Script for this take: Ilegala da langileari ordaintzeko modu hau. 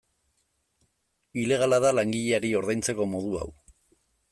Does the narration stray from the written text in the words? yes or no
no